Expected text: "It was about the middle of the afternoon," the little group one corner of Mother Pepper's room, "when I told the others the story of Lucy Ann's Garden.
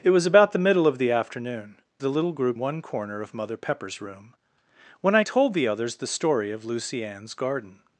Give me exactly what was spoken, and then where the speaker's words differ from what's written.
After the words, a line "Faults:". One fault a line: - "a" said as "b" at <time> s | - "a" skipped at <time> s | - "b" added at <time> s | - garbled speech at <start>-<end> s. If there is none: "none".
"It was about the middle of the afternoon," the little group one corner of Mother Pepper's room, "when I told the others the story of Lucy Ann's Garden.
Faults:
none